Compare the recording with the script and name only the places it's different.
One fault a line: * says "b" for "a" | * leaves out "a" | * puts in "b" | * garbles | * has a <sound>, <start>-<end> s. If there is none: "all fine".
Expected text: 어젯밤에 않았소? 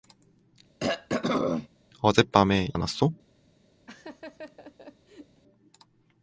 * has a throat clearing, 0.8-1.7 s
* has a laugh, 3.9-5.4 s